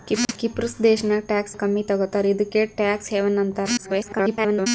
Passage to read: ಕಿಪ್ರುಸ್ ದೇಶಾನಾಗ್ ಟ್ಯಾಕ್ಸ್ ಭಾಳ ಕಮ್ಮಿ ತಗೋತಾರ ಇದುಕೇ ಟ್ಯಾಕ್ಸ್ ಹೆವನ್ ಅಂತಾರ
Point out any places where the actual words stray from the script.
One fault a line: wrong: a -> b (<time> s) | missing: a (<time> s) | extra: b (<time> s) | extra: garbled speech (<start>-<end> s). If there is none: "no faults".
missing: ಭಾಳ (1.6 s)
extra: garbled speech (3.8-4.7 s)